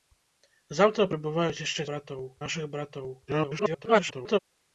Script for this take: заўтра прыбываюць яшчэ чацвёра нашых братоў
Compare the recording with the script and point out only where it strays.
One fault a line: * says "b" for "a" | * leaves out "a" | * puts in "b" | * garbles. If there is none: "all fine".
* says "братоў" for "чацвёра"
* garbles